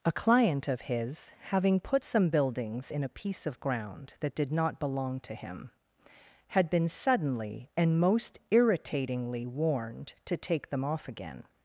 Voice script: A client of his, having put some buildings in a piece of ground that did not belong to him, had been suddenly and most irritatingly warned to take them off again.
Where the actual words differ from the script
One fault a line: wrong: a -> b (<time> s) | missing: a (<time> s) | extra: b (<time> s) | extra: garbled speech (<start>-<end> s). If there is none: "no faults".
no faults